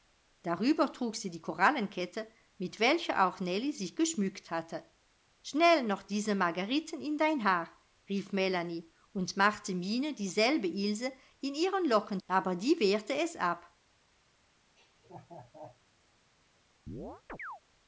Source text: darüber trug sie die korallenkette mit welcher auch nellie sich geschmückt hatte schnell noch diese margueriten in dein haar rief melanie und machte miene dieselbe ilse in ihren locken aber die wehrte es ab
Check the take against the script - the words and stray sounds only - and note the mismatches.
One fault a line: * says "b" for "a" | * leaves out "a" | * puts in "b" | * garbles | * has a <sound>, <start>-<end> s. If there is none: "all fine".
* has a laugh, 14.8-15.8 s
* has a chirp, 16.9-17.6 s